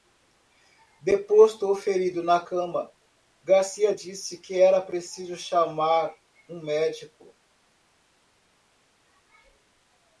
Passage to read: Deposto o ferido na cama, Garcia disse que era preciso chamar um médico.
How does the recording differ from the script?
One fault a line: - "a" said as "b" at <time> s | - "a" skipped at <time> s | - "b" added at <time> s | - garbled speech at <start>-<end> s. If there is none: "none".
none